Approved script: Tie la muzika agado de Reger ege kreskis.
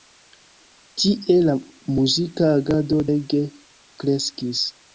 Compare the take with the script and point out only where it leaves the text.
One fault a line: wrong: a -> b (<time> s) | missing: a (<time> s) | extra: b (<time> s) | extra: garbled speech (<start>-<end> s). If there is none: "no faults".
missing: de Reger (3.0 s)